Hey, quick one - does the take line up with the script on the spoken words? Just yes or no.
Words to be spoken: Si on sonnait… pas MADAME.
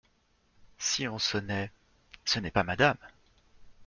no